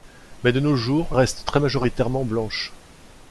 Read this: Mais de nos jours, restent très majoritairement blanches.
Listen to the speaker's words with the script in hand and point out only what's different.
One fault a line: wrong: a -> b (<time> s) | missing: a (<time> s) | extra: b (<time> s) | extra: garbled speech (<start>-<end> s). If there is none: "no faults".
no faults